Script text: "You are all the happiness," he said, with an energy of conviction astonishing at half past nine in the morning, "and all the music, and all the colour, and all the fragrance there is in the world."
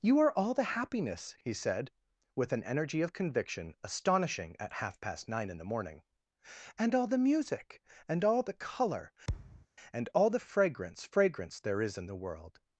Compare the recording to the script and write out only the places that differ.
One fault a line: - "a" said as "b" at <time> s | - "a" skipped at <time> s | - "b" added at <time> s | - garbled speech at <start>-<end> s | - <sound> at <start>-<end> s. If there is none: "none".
- thud at 9.3-9.7 s
- "fragrance" added at 11.0 s